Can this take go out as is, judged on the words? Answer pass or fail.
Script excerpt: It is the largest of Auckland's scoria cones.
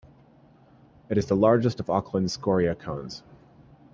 pass